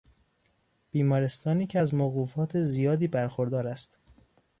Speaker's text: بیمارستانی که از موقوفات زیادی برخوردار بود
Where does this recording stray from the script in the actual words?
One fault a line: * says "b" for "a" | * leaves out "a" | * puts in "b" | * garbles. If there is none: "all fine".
* says "است" for "بود"